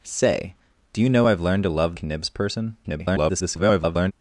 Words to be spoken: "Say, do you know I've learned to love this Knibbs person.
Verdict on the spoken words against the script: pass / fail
fail